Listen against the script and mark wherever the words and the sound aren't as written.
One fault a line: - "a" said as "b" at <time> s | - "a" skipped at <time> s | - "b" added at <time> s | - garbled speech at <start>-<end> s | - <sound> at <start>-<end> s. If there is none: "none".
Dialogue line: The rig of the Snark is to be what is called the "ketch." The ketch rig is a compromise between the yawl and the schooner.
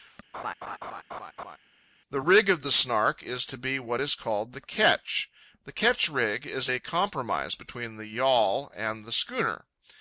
- laugh at 0.3-1.6 s